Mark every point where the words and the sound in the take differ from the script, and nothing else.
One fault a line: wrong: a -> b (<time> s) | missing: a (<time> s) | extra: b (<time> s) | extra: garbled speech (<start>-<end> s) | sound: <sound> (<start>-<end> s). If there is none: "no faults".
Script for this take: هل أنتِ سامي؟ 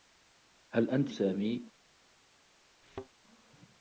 sound: thud (2.8-3.1 s)